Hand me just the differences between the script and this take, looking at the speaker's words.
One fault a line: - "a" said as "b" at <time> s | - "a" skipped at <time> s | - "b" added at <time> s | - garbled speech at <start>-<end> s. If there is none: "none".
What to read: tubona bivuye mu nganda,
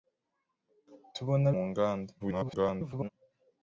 - "bivuye" skipped at 1.5 s
- garbled speech at 2.2-3.1 s